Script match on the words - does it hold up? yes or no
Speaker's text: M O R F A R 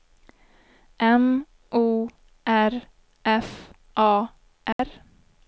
yes